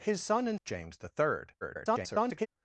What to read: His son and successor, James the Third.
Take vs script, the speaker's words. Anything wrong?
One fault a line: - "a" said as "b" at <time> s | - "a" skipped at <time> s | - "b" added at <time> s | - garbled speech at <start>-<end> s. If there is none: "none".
- "successor" skipped at 0.6 s
- garbled speech at 1.6-2.5 s